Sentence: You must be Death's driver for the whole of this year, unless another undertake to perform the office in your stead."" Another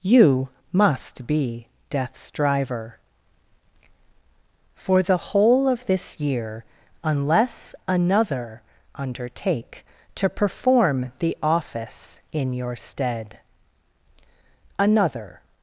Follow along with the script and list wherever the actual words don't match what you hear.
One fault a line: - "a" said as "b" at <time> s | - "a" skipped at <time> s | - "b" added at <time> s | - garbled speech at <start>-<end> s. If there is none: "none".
none